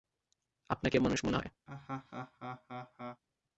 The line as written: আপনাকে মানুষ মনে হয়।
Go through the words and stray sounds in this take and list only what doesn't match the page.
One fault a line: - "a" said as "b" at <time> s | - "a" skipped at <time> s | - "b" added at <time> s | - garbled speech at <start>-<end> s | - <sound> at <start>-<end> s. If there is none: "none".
- laugh at 1.7-3.2 s